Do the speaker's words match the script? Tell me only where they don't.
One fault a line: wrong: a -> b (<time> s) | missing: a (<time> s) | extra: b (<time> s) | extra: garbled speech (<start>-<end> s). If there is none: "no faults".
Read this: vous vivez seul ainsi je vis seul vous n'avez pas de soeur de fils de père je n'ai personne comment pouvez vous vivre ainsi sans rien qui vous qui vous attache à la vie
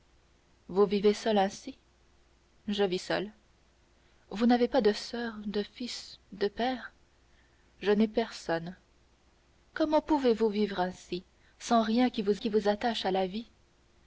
no faults